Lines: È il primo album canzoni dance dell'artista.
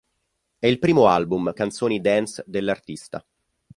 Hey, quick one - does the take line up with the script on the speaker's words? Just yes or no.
yes